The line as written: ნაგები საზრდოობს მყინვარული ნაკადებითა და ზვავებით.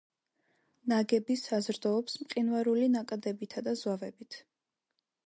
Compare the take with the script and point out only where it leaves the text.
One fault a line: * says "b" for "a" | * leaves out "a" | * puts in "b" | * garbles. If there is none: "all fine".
all fine